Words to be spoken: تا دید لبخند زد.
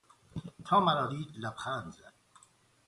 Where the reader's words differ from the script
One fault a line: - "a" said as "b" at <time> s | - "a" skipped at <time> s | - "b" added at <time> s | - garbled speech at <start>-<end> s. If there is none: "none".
- "مرا" added at 0.8 s